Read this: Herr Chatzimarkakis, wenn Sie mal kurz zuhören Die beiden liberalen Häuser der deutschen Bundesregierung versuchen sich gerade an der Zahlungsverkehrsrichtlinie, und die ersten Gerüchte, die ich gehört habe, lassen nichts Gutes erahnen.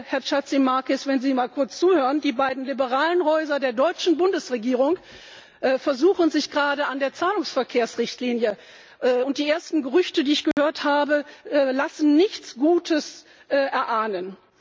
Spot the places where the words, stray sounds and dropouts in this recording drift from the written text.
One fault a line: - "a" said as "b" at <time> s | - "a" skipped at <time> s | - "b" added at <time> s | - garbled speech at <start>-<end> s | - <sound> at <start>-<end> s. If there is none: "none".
- dropout at 10.5-10.6 s